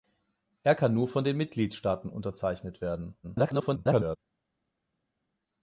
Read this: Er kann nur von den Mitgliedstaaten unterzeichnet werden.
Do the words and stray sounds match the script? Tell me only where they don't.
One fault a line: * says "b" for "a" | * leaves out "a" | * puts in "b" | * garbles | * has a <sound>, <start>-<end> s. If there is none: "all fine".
* garbles